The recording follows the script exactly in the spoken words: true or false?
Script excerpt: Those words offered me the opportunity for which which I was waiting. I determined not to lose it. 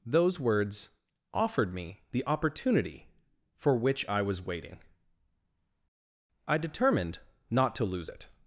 false